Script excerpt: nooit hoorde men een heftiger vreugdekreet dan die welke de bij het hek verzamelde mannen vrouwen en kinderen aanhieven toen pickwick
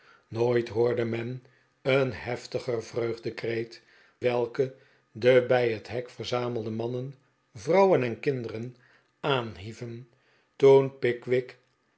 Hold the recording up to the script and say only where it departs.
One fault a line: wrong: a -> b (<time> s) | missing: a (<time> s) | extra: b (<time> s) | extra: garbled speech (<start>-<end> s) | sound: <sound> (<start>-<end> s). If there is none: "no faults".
missing: dan die (3.8 s)